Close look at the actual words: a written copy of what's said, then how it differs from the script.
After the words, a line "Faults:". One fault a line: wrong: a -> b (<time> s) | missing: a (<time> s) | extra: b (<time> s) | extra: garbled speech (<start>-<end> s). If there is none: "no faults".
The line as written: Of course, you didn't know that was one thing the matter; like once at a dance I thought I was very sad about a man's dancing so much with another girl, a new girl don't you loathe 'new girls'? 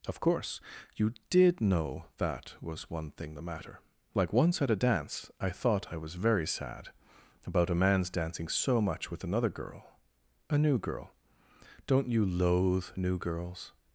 Of course, you did know that was one thing the matter; like once at a dance I thought I was very sad about a man's dancing so much with another girl, a new girl don't you loathe 'new girls'?
Faults:
wrong: didn't -> did (1.3 s)